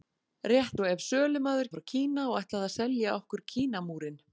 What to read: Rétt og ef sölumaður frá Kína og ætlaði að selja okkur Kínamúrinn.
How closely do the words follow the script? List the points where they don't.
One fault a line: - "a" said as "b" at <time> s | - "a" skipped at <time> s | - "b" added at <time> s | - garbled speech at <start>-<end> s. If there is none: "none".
none